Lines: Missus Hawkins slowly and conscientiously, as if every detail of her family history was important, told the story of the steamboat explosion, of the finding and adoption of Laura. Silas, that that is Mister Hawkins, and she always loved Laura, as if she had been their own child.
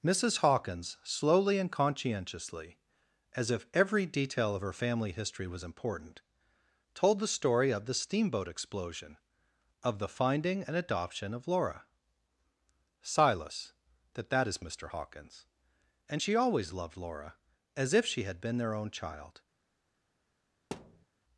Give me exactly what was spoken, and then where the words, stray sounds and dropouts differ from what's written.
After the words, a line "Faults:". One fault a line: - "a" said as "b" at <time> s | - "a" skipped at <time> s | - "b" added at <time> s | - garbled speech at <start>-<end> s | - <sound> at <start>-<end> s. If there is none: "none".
Missus Hawkins slowly and conscientiously, as if every detail of her family history was important, told the story of the steamboat explosion, of the finding and adoption of Laura. Silas, that that is Mister Hawkins, and she always loved Laura, as if she had been their own child.
Faults:
- thud at 20.7-21.1 s